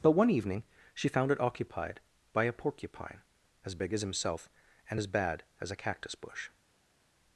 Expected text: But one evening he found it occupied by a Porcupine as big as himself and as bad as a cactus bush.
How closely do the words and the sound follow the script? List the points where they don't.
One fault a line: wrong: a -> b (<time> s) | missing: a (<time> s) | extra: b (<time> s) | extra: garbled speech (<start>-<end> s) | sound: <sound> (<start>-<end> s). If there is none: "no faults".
wrong: he -> she (0.9 s)